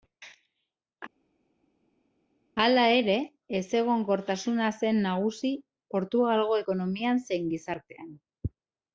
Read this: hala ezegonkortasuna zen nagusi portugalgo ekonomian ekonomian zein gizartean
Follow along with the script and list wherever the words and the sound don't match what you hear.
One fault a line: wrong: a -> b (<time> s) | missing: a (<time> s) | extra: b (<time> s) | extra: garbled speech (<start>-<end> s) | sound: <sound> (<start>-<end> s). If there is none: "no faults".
extra: ere (3.0 s)
missing: ekonomian (7.2 s)